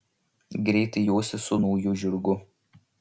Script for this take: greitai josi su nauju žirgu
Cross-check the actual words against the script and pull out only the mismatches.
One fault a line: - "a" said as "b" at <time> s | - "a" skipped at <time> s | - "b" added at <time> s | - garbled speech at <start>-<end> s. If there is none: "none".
none